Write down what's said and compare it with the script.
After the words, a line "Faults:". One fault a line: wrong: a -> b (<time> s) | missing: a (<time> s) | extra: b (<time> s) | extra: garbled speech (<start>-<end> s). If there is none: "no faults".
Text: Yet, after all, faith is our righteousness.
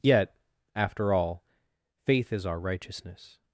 Yet, after all, faith is our righteousness.
Faults:
no faults